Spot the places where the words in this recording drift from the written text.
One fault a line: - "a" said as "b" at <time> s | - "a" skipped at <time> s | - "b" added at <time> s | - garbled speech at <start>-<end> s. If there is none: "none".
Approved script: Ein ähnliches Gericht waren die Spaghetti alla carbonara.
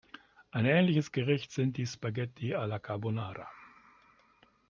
- "waren" said as "sind" at 1.5 s